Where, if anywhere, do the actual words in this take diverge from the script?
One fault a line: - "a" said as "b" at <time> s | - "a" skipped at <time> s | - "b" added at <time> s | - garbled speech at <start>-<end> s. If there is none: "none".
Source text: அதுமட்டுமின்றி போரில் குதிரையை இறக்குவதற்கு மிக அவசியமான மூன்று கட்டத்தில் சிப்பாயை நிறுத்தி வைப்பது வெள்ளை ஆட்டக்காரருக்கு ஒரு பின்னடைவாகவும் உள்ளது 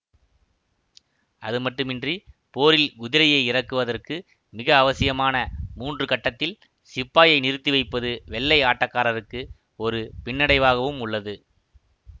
none